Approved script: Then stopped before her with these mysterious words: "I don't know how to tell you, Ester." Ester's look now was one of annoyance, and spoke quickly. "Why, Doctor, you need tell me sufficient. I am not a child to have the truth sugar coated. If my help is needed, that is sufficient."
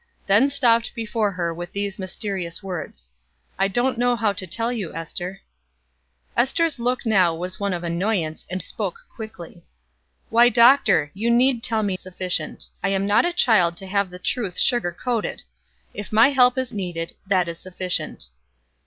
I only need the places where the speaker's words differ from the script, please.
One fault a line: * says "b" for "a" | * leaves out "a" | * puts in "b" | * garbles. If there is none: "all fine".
all fine